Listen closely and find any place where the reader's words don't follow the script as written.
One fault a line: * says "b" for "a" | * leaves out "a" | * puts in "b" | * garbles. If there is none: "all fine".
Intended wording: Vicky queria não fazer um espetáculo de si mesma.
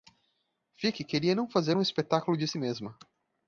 all fine